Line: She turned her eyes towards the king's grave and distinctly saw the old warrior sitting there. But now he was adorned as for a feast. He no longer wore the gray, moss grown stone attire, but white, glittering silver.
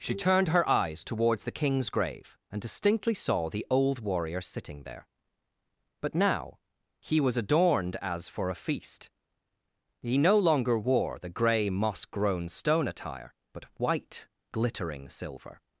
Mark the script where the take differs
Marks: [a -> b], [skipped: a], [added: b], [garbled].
She turned her eyes towards the king's grave and distinctly saw the old warrior sitting there. But now he was adorned as for a feast. He no longer wore the gray, moss grown stone attire, but white, glittering silver.